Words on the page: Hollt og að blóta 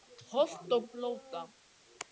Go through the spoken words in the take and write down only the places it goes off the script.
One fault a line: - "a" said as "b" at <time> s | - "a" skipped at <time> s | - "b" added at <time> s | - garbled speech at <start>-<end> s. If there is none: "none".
none